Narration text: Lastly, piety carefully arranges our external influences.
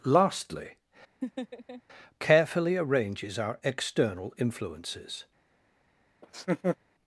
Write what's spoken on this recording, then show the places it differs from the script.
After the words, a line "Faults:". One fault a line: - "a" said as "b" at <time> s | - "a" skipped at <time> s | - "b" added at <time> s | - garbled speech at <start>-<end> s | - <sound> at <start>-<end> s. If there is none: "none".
Lastly, carefully arranges our external influences.
Faults:
- "piety" skipped at 0.8 s
- laugh at 1.2-1.8 s
- laugh at 6.2-6.8 s